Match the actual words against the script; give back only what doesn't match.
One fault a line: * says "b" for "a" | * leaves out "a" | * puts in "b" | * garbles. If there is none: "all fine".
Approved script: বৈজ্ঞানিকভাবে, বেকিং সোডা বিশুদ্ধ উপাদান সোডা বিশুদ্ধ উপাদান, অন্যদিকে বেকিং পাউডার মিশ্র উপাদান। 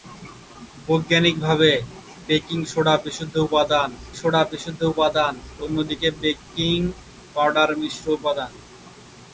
all fine